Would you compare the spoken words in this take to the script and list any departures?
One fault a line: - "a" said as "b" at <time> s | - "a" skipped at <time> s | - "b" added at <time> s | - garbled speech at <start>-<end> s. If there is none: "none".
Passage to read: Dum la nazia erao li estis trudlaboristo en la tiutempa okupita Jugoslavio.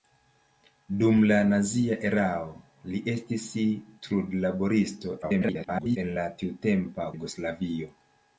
- garbled speech at 5.2-6.0 s
- "okupita" skipped at 7.1 s